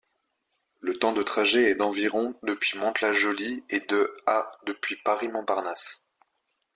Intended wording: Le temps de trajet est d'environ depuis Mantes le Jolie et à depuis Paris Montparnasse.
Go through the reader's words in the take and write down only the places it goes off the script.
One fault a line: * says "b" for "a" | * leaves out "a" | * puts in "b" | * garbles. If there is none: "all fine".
* says "la" for "le"
* puts in "de"